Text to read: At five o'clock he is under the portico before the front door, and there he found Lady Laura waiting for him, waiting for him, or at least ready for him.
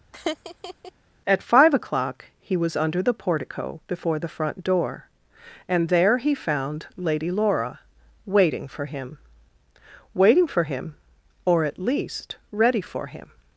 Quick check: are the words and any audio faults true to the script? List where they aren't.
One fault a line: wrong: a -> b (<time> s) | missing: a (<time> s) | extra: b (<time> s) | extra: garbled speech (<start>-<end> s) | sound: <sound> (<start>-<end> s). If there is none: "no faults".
sound: laugh (0.1-0.9 s)
wrong: is -> was (2.5 s)